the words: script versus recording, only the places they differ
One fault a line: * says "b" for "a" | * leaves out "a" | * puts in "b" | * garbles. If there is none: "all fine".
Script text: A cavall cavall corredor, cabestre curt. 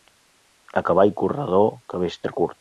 * leaves out "cavall"